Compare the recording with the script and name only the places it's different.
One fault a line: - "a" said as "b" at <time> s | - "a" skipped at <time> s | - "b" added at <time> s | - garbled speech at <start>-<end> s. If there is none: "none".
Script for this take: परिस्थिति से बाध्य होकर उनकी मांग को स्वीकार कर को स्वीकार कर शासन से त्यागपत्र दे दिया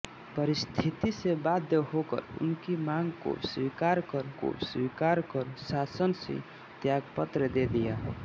none